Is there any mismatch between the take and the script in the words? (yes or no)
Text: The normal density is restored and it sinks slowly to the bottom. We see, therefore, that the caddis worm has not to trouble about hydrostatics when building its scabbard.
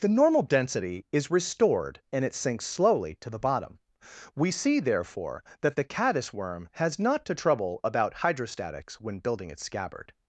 no